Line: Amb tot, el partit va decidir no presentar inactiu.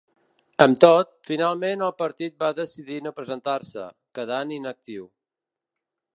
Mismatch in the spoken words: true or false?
true